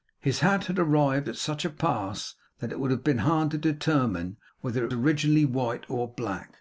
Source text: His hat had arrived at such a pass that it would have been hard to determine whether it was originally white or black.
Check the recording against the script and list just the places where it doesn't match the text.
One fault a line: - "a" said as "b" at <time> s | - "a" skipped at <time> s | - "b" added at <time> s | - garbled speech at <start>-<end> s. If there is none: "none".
- "was" skipped at 4.9 s